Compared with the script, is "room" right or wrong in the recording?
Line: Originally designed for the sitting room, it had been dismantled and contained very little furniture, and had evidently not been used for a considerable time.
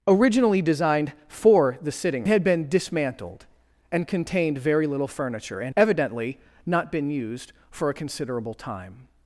wrong